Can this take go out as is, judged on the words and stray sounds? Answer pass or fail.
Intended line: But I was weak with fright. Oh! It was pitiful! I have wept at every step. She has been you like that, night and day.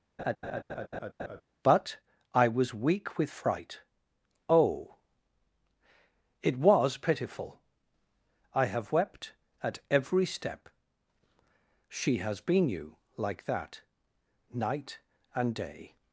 fail